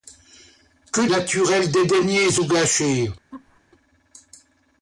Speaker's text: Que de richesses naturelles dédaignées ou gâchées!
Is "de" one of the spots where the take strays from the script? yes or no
yes